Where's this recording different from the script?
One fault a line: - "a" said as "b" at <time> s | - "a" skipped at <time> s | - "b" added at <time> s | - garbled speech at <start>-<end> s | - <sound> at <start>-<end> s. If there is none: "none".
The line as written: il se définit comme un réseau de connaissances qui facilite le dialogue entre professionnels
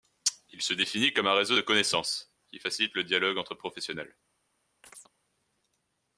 - chirp at 4.8-5.1 s